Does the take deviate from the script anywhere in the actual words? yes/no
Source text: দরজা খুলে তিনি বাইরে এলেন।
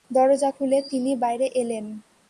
no